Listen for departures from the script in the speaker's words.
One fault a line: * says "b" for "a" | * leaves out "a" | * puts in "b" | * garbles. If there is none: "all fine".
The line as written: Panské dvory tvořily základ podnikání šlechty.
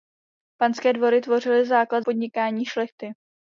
all fine